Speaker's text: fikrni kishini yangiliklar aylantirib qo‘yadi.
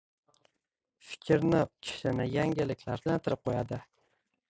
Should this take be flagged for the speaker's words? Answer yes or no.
no